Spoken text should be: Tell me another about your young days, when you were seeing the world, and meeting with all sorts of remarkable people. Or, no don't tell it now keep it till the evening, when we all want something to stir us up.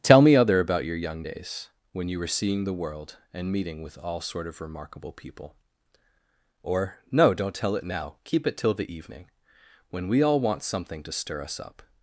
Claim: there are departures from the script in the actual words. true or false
true